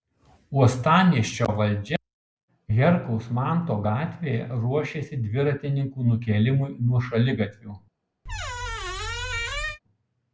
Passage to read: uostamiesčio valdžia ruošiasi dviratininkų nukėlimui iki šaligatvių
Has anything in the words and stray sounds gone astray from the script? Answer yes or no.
yes